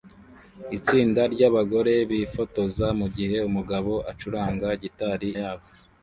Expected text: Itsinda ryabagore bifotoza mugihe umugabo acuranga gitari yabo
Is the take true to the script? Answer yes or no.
yes